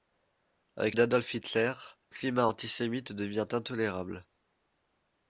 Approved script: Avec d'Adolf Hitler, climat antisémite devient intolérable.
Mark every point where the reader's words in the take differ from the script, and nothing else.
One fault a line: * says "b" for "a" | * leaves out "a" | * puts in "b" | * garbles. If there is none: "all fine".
all fine